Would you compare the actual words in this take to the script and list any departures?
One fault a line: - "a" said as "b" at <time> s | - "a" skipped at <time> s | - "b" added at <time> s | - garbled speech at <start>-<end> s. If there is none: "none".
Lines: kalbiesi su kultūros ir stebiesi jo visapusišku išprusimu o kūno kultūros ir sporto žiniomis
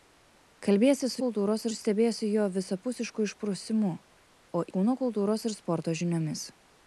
none